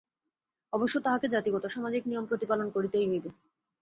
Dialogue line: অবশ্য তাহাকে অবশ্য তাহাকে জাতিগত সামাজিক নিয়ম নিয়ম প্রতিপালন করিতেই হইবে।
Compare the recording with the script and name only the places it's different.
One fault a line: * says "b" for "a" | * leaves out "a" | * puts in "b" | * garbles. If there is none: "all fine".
* leaves out "অবশ্য তাহাকে"
* leaves out "নিয়ম"